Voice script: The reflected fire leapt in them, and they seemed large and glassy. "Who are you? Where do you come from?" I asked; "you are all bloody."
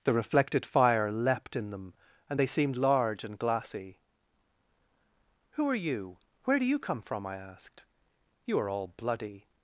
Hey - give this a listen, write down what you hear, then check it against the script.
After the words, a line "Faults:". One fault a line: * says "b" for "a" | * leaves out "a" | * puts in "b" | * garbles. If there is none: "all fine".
The reflected fire leapt in them, and they seemed large and glassy. "Who are you? Where do you come from?" I asked; "you are all bloody."
Faults:
all fine